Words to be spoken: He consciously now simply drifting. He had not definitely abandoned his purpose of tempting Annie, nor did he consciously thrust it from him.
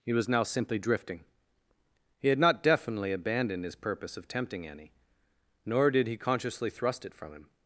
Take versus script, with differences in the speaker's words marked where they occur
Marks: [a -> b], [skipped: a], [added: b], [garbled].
He [consciously -> was] now simply drifting. He had not definitely abandoned his purpose of tempting Annie, nor did he consciously thrust it from him.